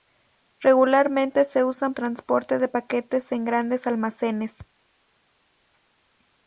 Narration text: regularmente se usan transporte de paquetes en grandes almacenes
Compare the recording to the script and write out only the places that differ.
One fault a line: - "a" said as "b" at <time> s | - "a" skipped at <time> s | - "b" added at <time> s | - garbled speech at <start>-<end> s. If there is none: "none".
none